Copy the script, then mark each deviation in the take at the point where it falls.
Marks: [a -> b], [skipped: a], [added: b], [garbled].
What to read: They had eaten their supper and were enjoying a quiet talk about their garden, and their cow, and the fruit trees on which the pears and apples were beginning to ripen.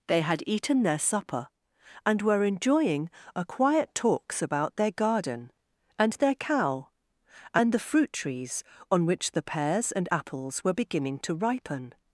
They had eaten their supper and were enjoying a quiet [talk -> talks] about their garden, and their cow, and the fruit trees on which the pears and apples were beginning to ripen.